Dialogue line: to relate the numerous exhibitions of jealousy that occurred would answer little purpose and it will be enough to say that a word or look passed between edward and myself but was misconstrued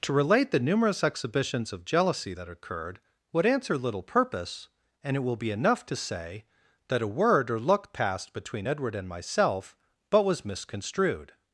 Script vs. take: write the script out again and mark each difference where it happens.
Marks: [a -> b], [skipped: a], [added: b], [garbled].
to relate the numerous exhibitions of jealousy that occurred would answer little purpose and it will be enough to say that a word or look passed between edward and myself but was misconstrued